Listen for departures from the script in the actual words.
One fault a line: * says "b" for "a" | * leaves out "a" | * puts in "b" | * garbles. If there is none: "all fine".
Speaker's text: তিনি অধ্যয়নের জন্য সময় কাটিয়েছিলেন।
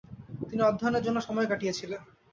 all fine